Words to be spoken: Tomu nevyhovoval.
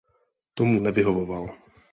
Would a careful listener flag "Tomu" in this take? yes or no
no